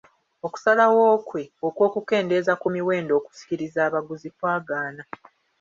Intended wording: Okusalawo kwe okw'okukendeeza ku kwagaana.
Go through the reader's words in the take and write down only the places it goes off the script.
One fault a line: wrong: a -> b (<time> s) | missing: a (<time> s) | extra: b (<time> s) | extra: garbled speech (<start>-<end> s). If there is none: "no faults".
extra: miwendo okusikiriza abaguzi (2.7 s)